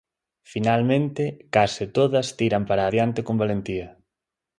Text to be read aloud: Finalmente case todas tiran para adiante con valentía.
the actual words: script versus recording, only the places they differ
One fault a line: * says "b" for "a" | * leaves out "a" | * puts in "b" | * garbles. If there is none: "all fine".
all fine